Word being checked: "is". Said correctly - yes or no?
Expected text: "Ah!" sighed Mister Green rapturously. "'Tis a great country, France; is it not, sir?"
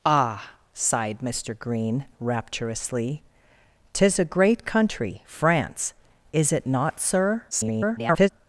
yes